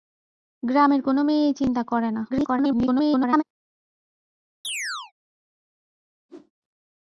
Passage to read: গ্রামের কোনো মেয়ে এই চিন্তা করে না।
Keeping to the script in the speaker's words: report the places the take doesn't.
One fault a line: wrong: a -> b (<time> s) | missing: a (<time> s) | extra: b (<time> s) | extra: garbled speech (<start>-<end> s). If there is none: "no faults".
extra: garbled speech (2.3-3.4 s)